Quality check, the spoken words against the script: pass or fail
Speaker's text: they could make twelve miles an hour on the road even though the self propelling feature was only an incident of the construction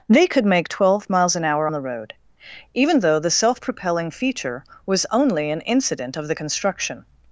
fail